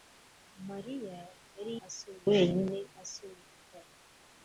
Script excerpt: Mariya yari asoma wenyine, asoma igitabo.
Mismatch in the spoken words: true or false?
false